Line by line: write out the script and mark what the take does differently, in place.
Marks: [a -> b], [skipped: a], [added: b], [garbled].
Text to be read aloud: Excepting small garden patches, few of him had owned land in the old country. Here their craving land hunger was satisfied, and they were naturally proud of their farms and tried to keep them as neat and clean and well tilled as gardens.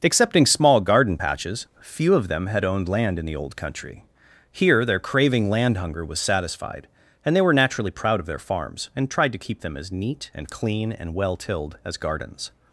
Excepting small garden patches, few of [him -> them] had owned land in the old country. Here their craving land hunger was satisfied, and they were naturally proud of their farms and tried to keep them as neat and clean and well tilled as gardens.